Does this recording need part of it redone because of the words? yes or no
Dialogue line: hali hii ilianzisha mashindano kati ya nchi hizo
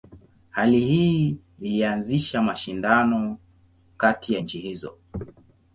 no